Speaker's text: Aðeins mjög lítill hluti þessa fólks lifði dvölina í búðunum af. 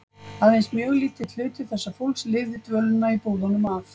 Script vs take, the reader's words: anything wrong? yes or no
no